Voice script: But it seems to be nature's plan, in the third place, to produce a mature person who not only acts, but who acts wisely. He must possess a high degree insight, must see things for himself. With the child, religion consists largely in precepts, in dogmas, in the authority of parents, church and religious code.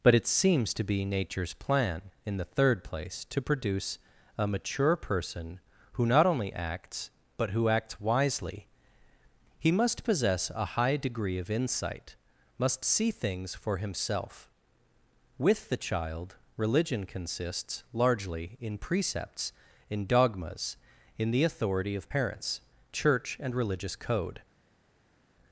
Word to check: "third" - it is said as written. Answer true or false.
true